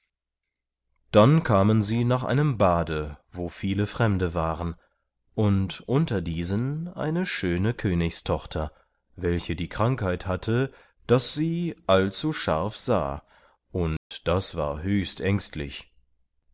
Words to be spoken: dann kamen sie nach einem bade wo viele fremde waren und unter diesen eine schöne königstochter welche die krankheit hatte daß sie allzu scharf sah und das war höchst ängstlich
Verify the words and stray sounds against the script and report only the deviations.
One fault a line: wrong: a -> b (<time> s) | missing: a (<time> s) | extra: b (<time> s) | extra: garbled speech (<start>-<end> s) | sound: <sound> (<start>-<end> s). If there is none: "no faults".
sound: dropout (14.0-14.1 s)